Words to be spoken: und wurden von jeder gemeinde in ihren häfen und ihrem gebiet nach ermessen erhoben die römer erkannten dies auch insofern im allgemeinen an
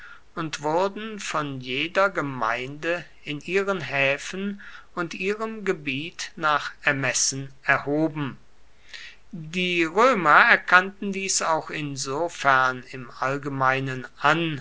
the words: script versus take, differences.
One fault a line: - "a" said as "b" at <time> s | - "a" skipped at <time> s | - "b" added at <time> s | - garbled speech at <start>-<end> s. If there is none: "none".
none